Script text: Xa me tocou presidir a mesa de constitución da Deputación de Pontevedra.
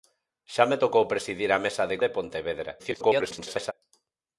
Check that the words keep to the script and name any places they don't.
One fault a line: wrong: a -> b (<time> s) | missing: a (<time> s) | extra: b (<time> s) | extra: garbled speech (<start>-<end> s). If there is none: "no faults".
missing: constitución da Deputación (2.0 s)
extra: garbled speech (2.8-3.7 s)